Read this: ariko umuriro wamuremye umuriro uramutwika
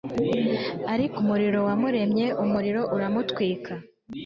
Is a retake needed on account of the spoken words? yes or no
no